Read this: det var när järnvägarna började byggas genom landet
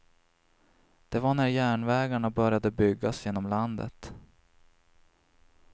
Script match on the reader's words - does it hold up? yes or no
yes